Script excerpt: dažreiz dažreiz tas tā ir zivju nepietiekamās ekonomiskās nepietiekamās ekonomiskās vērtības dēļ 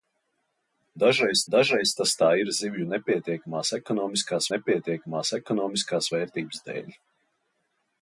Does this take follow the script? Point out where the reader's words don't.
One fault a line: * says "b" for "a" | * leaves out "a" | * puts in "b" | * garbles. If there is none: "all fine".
all fine